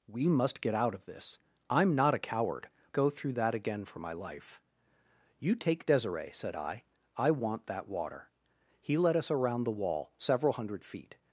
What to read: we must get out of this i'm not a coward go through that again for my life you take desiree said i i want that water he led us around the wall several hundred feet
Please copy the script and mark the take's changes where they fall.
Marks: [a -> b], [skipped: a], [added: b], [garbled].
we must get out of this i'm not a coward go through that again for my life you take desiree said i i want that water he led us around the wall several hundred feet